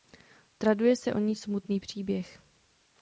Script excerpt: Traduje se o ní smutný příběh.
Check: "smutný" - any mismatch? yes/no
no